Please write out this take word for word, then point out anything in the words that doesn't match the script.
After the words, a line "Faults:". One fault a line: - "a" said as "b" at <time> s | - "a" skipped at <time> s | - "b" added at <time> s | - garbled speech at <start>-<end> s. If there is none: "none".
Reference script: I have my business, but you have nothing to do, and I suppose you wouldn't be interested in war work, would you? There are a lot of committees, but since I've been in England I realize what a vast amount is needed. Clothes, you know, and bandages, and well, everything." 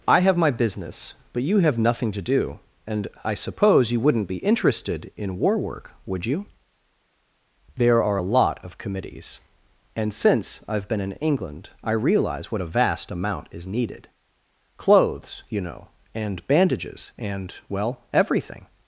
I have my business, but you have nothing to do, and I suppose you wouldn't be interested in war work, would you? There are a lot of committees, and since I've been in England I realize what a vast amount is needed. Clothes, you know, and bandages, and well, everything."
Faults:
- "but" said as "and" at 10.0 s